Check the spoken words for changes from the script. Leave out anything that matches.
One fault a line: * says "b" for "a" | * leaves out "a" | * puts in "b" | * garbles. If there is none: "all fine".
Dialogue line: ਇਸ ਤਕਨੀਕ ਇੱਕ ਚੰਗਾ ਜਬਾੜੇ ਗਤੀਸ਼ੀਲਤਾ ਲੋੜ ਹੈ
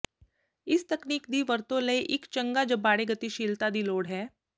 * puts in "ਦੀ ਵਰਤੋ ਲਈ"
* puts in "ਦੀ"